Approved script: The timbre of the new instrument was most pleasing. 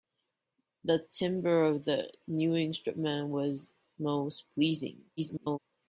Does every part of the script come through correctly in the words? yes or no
no